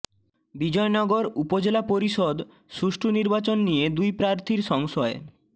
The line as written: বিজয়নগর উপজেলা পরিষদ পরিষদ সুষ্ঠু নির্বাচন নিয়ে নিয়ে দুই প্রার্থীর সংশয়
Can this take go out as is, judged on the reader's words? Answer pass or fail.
fail